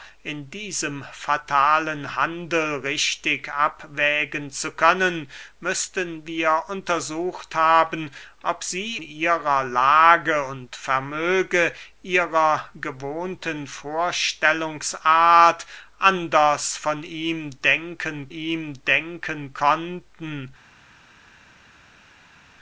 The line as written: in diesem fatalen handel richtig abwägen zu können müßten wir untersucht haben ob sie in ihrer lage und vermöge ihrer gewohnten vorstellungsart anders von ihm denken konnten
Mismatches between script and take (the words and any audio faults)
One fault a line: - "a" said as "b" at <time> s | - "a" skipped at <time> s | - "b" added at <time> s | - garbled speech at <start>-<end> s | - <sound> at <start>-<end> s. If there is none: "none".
- "in" skipped at 9.0 s
- "ihm denken" added at 18.3 s